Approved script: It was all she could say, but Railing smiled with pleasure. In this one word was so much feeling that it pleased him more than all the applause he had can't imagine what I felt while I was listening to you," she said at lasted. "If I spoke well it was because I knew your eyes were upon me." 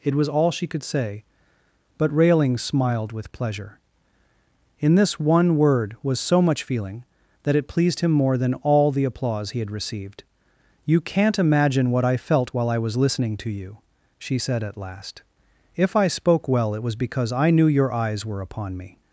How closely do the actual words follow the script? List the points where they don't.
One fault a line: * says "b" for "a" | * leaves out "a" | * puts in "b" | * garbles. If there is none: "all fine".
* puts in "received You"
* says "last" for "lasted"